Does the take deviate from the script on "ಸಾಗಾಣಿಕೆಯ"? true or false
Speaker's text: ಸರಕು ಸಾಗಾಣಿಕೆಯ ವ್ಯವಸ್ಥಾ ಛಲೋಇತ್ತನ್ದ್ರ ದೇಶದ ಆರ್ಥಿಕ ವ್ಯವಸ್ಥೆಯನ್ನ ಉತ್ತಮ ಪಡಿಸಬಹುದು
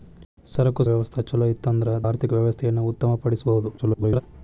true